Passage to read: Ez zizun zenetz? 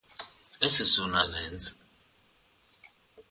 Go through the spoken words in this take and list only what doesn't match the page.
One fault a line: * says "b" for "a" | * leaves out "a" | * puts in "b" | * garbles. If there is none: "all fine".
all fine